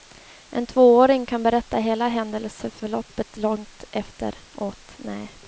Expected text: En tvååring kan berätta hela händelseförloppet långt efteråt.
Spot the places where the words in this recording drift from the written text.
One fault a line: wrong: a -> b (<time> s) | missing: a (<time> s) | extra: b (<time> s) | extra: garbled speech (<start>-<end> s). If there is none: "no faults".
no faults